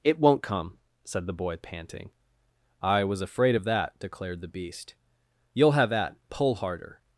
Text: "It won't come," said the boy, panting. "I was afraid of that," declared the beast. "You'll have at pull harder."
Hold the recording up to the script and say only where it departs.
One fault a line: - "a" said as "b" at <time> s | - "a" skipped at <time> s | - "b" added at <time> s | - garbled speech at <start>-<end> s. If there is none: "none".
none